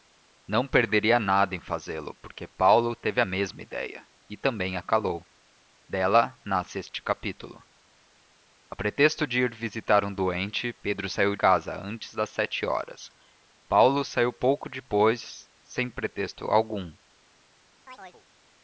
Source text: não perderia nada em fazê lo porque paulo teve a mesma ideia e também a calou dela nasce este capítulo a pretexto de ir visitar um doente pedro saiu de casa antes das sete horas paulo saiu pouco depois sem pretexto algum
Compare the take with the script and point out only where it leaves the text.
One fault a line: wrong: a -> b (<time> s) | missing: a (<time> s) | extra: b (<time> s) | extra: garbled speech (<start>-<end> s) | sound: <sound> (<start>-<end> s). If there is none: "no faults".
missing: de (11.3 s)
sound: chirp (17.9-18.3 s)